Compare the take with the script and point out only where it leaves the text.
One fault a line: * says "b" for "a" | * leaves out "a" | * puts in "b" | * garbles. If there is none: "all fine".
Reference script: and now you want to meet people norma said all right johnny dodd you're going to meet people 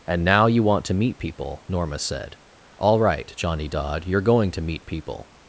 all fine